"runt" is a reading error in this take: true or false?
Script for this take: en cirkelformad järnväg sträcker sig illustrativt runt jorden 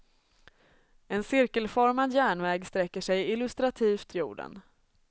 true